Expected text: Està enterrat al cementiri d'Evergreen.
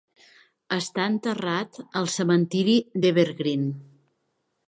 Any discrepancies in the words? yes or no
no